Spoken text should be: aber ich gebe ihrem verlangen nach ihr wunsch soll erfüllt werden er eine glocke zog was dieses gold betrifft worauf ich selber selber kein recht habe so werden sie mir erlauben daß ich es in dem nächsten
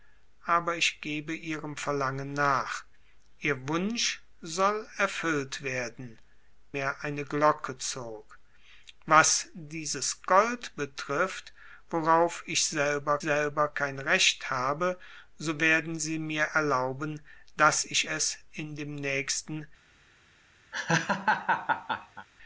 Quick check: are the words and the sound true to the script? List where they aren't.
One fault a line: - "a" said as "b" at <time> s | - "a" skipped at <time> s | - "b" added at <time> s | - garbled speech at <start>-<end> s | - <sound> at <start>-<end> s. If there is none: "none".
- laugh at 20.7-22.3 s